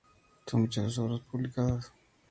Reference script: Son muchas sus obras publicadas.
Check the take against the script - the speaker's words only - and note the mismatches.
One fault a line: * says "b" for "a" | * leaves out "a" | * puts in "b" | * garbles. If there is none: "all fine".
all fine